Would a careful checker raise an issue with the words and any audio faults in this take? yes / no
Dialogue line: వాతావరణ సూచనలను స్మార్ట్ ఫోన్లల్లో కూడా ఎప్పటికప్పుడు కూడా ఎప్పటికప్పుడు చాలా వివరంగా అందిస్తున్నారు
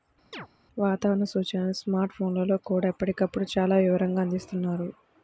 yes